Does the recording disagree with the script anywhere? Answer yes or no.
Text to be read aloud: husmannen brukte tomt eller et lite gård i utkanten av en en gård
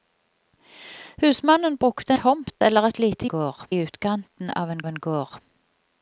no